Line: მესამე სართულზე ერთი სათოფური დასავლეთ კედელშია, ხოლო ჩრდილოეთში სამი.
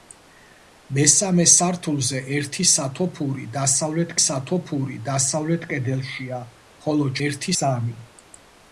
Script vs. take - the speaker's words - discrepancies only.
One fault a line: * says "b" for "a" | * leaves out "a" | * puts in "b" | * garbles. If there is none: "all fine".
* puts in "სათოფური დასავლეთ"
* says "ერთი" for "ჩრდილოეთში"